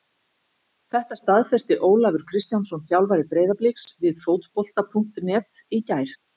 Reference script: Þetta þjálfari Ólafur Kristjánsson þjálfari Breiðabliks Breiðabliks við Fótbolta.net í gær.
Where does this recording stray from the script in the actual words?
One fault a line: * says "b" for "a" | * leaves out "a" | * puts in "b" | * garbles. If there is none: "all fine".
* says "staðfesti" for "þjálfari"
* leaves out "Breiðabliks"